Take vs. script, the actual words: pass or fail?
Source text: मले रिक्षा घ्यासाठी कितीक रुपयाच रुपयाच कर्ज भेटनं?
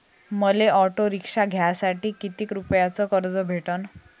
fail